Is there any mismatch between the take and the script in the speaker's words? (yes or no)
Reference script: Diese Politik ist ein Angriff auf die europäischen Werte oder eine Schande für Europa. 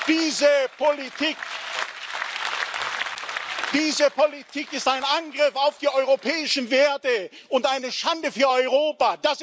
yes